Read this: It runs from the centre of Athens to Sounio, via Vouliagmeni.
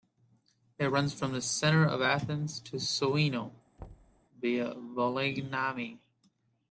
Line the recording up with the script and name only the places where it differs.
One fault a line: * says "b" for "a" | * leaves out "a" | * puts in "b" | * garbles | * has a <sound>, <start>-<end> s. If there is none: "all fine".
* has a thud, 3.8-4.2 s